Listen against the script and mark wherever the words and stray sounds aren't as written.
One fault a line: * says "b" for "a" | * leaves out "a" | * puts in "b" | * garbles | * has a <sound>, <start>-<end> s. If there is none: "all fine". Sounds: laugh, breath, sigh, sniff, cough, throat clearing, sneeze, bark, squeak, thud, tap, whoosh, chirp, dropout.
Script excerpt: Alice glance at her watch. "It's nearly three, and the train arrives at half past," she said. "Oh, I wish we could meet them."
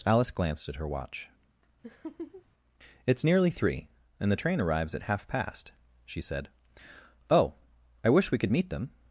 * says "glanced" for "glance"
* has a laugh, 1.8-2.5 s